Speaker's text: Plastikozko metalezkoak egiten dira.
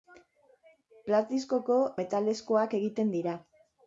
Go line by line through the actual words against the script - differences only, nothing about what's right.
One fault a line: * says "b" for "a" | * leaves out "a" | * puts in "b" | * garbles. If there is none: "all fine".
all fine